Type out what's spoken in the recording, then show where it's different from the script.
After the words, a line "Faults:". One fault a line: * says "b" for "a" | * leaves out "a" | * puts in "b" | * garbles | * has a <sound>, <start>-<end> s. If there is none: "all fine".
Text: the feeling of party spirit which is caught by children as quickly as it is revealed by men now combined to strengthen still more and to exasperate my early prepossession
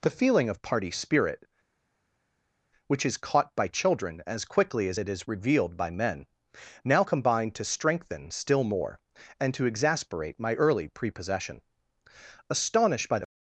the feeling of party spirit which is caught by children as quickly as it is revealed by men now combined to strengthen still more and to exasperate my early prepossession astonished by the
Faults:
* puts in "astonished by the"